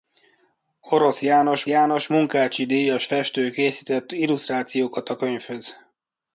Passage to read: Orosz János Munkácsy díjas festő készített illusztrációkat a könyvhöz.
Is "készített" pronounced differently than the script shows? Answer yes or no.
no